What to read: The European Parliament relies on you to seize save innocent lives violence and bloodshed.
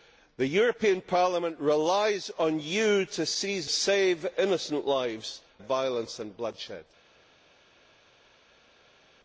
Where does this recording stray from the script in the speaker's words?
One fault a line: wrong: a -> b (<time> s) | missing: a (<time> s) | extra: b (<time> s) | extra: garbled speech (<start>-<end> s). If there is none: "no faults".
no faults